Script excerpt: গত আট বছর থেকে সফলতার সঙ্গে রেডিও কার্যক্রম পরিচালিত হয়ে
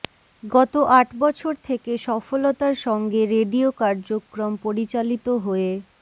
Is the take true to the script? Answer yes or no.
yes